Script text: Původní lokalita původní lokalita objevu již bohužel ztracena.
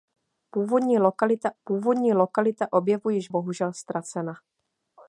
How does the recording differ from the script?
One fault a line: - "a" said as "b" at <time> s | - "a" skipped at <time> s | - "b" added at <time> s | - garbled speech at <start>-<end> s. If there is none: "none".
none